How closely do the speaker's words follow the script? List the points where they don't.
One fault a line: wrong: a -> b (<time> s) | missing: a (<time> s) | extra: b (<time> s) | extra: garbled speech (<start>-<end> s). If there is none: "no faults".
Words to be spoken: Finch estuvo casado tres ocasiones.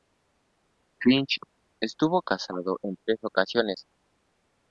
extra: en (2.8 s)